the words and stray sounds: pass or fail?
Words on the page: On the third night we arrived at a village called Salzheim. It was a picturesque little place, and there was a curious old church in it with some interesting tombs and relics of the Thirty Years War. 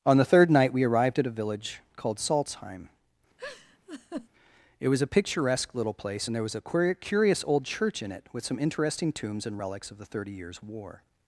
fail